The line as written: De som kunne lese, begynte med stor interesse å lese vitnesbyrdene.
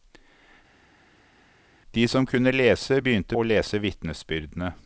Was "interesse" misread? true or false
true